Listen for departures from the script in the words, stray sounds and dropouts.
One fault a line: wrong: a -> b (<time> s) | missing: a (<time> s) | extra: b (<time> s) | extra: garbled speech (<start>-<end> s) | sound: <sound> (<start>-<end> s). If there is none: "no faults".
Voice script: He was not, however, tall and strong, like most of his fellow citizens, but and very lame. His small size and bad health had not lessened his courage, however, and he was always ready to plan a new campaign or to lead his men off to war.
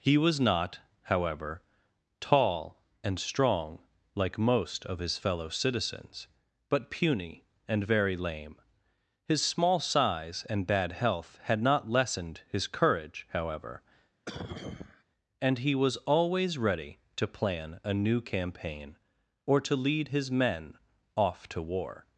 extra: puny (6.9 s)
sound: cough (14.2-15.0 s)